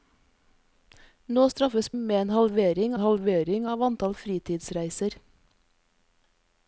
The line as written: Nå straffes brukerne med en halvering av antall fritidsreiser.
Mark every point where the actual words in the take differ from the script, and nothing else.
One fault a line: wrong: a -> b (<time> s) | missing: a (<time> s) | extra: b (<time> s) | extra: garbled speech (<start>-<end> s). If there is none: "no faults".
missing: brukerne (1.9 s)
extra: halvering (3.0 s)